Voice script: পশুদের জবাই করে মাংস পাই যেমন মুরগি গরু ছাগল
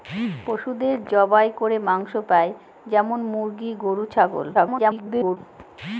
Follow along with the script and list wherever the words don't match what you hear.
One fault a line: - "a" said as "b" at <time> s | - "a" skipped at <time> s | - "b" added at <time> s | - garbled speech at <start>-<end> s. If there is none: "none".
- garbled speech at 4.5-5.4 s